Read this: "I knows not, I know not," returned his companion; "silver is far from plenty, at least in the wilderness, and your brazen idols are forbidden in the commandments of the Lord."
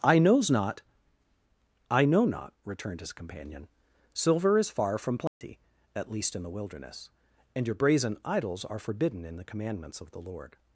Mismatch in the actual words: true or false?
false